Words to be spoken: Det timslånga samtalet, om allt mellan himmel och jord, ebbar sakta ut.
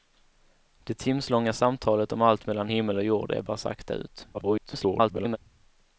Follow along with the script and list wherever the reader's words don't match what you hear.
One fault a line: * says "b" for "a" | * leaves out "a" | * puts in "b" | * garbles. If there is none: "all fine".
* garbles